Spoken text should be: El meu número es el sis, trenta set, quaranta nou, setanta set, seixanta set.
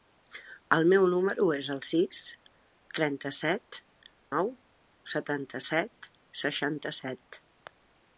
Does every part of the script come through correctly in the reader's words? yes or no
no